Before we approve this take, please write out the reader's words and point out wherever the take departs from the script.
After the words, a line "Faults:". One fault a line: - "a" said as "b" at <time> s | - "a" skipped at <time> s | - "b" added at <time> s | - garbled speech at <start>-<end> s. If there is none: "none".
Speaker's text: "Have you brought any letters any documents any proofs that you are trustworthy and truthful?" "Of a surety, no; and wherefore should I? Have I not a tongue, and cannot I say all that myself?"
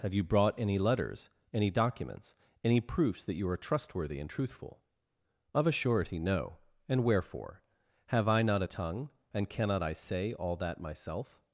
"Have you brought any letters any documents any proofs that you are trustworthy and truthful?" "Of a surety, no; and wherefore? Have I not a tongue, and cannot I say all that myself?"
Faults:
- "should I" skipped at 7.6 s